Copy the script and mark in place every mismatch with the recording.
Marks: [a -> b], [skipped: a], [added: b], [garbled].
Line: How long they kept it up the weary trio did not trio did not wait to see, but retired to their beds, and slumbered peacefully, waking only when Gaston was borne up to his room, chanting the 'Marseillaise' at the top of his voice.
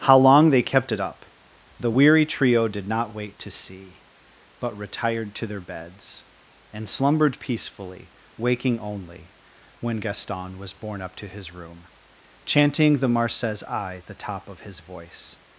How long they kept it up the weary trio did not [skipped: trio did not] wait to see, but retired to their beds, and slumbered peacefully, waking only when Gaston was borne up to his room, chanting the 'Marseillaise' at the top of his voice.